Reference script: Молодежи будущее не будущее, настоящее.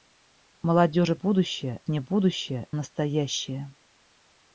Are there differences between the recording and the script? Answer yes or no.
no